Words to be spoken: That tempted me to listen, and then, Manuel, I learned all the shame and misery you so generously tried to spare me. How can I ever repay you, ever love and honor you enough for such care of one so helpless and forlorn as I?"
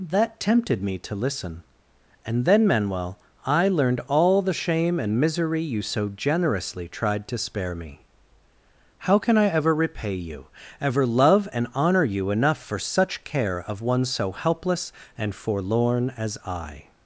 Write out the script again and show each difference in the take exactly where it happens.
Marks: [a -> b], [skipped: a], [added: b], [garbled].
That tempted me to listen, and then, Manuel, I learned all the shame and misery you so generously tried to spare me. How can I ever repay you, ever love and honor you enough for such care of one so helpless and forlorn as I?"